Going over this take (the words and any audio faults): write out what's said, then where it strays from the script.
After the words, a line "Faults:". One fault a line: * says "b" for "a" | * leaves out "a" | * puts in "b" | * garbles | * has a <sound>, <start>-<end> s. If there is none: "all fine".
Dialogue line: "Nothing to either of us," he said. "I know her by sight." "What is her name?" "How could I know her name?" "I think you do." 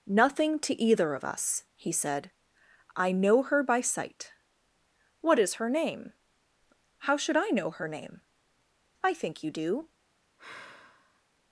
"Nothing to either of us," he said. "I know her by sight." "What is her name?" "How should I know her name?" "I think you do."
Faults:
* says "should" for "could"
* has a sigh, 10.4-11.2 s